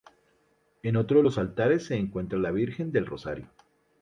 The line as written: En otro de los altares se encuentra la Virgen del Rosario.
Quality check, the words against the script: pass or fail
pass